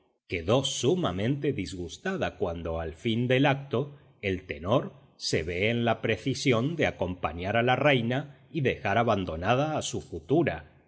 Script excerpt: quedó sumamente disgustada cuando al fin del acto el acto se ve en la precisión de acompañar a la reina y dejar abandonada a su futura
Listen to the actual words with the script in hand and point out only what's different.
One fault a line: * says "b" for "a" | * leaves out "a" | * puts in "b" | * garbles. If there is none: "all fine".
* says "tenor" for "acto"